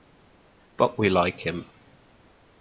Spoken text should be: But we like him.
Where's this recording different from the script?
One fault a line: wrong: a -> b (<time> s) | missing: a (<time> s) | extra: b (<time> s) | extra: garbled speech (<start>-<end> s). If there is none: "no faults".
no faults